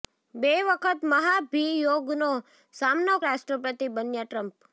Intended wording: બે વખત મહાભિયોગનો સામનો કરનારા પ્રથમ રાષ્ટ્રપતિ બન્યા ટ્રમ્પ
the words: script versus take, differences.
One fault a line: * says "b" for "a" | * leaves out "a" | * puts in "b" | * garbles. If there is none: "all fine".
* leaves out "કરનારા પ્રથમ"